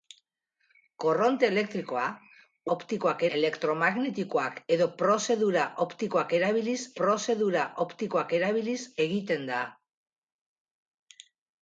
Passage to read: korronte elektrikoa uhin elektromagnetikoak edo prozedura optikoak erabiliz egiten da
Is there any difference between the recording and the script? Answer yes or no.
yes